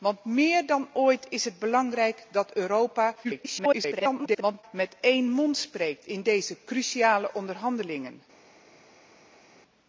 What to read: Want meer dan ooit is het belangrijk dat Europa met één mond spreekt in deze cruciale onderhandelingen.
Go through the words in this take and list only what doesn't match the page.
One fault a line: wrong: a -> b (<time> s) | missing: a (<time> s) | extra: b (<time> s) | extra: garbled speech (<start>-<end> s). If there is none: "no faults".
extra: garbled speech (3.2-4.6 s)